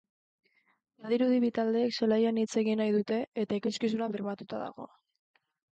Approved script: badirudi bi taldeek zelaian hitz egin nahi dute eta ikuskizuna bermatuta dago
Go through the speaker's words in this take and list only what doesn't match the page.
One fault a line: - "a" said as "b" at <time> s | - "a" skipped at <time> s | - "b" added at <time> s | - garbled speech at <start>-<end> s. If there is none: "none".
none